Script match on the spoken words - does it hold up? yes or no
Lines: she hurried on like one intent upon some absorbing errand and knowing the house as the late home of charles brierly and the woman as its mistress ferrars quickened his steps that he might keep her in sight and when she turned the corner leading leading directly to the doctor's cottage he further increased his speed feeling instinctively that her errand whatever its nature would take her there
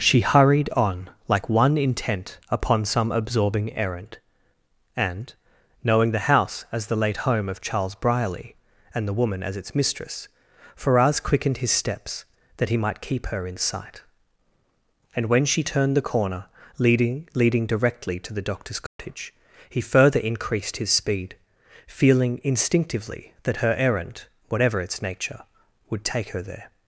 yes